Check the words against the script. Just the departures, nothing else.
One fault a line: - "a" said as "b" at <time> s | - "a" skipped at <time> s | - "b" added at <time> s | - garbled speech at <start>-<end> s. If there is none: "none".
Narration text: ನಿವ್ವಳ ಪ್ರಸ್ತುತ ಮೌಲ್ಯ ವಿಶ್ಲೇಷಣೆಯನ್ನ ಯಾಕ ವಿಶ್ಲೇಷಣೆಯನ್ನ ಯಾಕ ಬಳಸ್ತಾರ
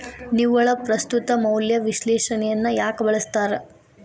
- "ವಿಶ್ಲೇಷಣೆಯನ್ನ ಯಾಕ" skipped at 3.0 s